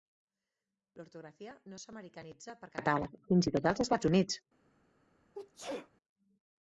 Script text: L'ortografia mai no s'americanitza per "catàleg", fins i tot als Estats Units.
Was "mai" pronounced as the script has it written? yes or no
no